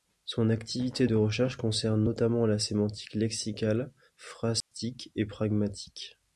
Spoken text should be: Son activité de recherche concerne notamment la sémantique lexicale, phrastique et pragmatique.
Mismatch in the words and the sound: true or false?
true